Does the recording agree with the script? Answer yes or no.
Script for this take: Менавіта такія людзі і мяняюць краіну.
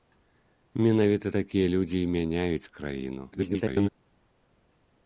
no